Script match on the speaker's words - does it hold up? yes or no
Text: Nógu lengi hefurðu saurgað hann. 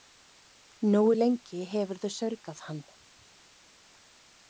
yes